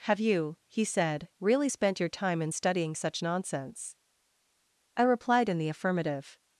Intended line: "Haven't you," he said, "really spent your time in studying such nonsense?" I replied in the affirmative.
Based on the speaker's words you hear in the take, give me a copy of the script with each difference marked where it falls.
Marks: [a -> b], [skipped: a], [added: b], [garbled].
["Haven't -> Have] you," he said, "really spent your time in studying such nonsense?" I replied in the affirmative.